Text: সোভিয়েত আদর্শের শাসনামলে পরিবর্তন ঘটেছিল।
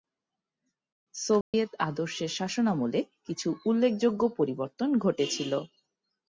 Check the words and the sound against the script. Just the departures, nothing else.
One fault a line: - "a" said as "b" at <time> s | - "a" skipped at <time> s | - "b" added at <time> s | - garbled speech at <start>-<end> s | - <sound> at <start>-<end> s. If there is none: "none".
- dropout at 1.4-1.5 s
- "কিছু উল্লেখযোগ্য" added at 3.2 s